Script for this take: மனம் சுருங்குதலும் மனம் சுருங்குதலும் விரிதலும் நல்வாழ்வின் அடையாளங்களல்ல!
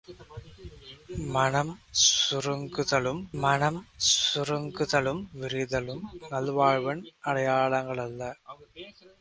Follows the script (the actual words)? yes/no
yes